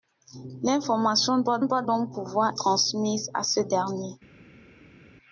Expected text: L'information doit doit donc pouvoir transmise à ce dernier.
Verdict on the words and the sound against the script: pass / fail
pass